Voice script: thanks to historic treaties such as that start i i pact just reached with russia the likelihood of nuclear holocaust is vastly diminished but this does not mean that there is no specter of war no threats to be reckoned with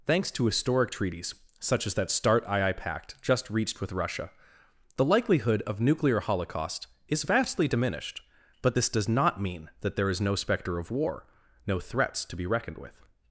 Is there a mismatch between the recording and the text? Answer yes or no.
no